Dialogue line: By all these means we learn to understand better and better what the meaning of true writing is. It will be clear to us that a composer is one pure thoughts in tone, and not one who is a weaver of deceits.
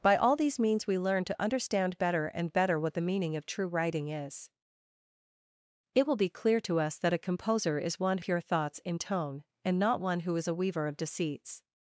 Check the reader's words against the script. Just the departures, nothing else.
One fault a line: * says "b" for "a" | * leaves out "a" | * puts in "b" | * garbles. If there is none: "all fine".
all fine